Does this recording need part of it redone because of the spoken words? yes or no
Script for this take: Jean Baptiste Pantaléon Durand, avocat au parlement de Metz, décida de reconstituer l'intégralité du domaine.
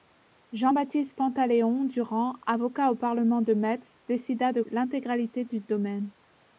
yes